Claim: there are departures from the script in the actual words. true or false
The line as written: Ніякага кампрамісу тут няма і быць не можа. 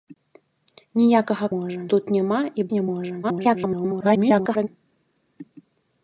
true